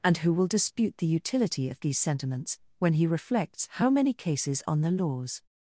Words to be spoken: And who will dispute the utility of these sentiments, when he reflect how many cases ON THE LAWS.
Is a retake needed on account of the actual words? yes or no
yes